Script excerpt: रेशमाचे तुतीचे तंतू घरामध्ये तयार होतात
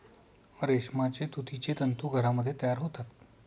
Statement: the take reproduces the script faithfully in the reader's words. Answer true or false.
true